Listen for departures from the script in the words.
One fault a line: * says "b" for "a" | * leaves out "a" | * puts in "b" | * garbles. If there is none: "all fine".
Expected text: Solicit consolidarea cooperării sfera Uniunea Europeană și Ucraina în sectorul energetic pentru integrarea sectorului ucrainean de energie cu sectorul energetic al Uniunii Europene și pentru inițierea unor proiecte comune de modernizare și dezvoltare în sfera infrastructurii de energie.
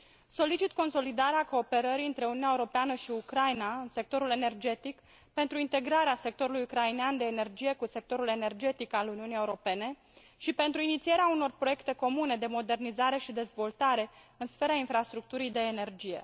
* says "între" for "sfera"